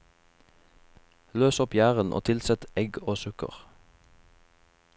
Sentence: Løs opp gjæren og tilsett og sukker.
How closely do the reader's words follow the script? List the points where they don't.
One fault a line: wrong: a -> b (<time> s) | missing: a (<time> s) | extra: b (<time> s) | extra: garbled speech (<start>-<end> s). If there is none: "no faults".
extra: egg (2.8 s)